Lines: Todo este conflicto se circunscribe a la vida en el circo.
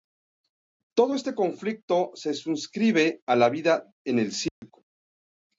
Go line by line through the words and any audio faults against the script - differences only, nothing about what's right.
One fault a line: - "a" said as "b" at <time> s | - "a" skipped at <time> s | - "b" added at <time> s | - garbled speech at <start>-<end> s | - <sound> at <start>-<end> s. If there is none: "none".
- dropout at 4.5-4.6 s